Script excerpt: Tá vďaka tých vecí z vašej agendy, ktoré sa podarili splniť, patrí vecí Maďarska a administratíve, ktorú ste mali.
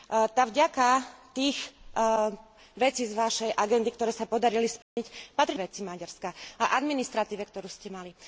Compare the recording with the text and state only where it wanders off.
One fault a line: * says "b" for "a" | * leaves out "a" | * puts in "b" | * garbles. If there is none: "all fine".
all fine